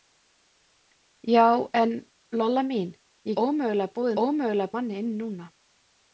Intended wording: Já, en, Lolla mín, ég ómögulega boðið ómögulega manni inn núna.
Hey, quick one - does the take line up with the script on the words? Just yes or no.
yes